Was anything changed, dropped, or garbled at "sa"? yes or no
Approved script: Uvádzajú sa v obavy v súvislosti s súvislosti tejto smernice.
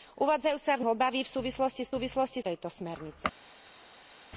no